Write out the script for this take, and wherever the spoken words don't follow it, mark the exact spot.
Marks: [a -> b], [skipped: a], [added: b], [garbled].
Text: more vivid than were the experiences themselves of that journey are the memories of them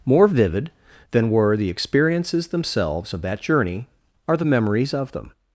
more vivid than were the experiences themselves of that journey are the memories of them